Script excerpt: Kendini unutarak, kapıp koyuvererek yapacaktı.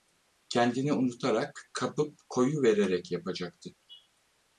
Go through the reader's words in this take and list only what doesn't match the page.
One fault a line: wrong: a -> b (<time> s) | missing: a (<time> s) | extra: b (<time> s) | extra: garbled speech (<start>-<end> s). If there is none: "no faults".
no faults